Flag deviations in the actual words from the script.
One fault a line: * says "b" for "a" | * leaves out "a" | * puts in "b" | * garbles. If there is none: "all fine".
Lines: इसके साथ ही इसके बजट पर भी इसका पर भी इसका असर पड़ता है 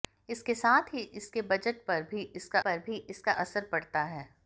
all fine